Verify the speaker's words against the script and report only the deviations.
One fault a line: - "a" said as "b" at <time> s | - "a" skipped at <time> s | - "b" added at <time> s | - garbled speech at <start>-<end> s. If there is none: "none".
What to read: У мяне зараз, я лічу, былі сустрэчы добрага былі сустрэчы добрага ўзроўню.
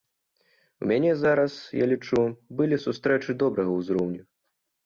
- "былі сустрэчы добрага" skipped at 3.7 s